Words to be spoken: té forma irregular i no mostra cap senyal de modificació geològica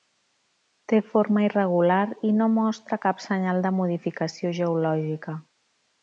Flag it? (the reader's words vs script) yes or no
no